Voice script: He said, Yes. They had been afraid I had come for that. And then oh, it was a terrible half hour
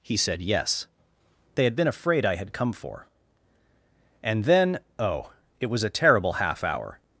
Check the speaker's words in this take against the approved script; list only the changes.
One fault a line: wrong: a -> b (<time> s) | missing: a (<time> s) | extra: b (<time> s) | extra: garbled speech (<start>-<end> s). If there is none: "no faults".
missing: that (3.1 s)